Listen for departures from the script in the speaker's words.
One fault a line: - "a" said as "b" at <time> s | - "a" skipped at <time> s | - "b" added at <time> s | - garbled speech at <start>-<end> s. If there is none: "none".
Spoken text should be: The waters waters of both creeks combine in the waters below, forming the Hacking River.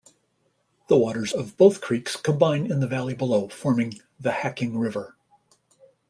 - "waters" skipped at 1.3 s
- "waters" said as "valley" at 2.9 s